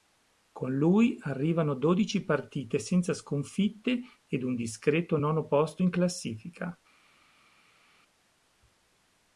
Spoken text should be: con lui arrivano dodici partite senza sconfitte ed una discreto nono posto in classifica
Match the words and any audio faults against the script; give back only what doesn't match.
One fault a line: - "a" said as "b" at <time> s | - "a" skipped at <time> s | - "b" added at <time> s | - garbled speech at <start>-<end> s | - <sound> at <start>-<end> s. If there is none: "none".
- "una" said as "un" at 4.4 s